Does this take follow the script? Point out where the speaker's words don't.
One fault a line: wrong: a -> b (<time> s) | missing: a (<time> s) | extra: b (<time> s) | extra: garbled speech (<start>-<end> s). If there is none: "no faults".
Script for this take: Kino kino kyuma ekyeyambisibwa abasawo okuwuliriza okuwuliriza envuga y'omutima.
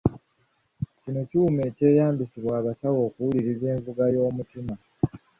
missing: kino (1.2 s)
missing: okuwuliriza (3.6 s)